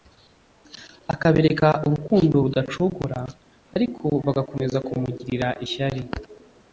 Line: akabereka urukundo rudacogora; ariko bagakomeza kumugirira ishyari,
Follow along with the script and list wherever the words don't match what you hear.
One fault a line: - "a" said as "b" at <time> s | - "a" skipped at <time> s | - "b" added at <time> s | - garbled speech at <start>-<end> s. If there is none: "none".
none